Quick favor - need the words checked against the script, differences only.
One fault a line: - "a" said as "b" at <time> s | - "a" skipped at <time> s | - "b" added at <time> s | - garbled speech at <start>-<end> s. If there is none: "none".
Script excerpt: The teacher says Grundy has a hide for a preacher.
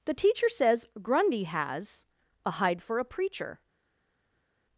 none